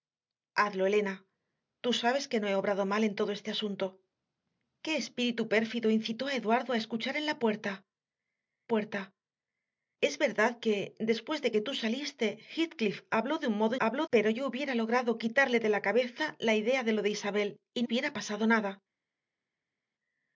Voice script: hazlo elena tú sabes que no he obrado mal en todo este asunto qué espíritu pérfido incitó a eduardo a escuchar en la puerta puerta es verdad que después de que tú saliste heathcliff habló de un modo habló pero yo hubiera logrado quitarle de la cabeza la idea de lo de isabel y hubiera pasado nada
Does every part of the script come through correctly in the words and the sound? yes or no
yes